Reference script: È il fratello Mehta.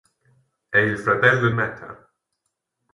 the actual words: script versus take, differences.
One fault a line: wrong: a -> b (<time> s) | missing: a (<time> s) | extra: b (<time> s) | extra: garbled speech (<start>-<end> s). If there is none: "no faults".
no faults